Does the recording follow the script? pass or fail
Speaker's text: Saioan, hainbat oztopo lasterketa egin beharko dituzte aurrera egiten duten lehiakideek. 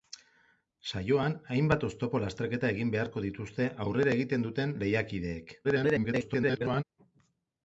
fail